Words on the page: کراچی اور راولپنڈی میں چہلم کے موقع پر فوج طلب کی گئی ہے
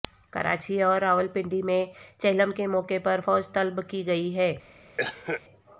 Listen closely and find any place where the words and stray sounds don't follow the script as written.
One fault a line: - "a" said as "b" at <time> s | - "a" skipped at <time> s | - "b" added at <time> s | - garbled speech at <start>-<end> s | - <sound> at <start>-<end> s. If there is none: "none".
- cough at 5.0-5.4 s